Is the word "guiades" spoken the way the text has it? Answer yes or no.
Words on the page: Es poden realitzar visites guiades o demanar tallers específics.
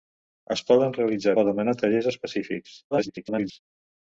no